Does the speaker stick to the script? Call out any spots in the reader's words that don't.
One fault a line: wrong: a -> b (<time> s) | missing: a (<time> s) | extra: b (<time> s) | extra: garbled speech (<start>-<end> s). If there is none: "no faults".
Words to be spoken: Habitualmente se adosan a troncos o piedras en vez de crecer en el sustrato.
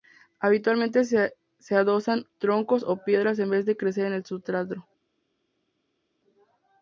missing: a (2.2 s)